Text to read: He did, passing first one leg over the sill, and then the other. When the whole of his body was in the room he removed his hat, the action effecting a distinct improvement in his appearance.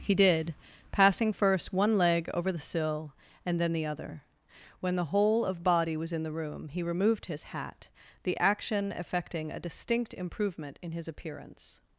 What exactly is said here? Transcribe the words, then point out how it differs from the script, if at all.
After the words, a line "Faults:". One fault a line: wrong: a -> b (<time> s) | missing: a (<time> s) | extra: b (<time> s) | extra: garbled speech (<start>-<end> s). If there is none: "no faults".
He did, passing first one leg over the sill, and then the other. When the whole of body was in the room he removed his hat, the action effecting a distinct improvement in his appearance.
Faults:
missing: his (5.6 s)